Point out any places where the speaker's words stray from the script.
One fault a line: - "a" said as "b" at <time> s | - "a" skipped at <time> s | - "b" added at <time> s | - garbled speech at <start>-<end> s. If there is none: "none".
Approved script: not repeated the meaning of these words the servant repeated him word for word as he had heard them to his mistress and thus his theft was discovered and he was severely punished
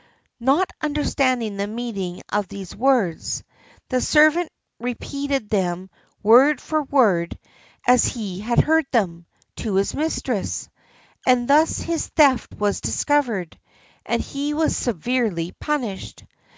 - "repeated" said as "understanding" at 0.8 s
- "him" said as "them" at 5.5 s